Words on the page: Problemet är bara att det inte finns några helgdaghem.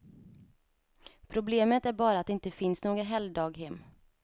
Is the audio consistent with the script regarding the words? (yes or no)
yes